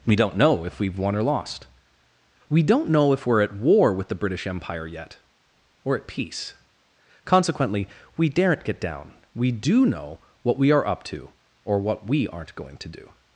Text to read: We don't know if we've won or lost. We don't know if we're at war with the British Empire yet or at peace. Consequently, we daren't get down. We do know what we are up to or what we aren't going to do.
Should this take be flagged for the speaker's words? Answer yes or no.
no